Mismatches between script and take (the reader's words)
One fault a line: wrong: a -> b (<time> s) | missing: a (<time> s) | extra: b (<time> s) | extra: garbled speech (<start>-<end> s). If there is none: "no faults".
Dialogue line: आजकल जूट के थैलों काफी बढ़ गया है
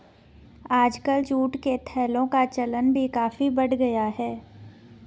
extra: का चलन भी (2.3 s)